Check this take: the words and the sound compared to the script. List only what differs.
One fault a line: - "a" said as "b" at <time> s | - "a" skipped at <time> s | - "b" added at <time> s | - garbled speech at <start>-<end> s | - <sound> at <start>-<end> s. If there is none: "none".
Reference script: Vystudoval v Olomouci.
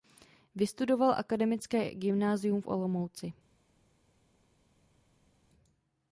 - "akademické gymnázium" added at 1.2 s